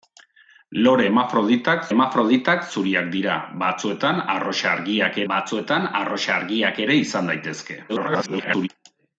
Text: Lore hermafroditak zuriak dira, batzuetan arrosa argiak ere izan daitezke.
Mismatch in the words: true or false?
true